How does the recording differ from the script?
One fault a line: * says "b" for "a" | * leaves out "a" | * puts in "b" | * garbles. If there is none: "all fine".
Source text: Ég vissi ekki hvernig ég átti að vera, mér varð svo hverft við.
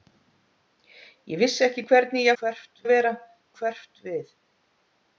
* says "hverft" for "átti"
* leaves out "mér varð svo"